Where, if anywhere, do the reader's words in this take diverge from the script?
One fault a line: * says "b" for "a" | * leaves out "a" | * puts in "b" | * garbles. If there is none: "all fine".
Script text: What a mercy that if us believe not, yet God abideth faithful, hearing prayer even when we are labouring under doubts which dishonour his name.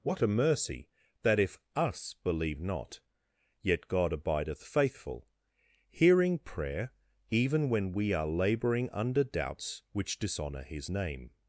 all fine